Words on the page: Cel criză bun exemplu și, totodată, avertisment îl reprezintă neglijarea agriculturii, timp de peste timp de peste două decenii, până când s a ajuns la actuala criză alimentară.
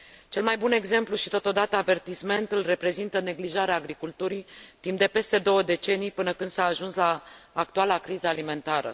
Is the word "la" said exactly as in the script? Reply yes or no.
yes